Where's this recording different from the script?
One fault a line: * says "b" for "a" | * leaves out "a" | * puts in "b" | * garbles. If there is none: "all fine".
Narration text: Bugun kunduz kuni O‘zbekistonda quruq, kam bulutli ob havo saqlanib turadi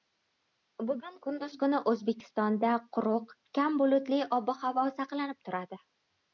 all fine